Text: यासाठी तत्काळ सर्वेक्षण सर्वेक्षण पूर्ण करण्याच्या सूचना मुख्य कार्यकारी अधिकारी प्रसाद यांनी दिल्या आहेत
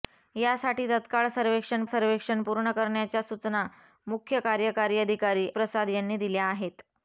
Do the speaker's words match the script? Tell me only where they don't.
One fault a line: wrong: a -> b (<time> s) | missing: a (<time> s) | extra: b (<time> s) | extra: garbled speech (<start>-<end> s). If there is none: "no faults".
no faults